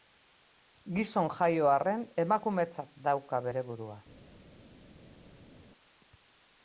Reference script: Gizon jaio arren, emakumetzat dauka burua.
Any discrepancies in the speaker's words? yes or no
yes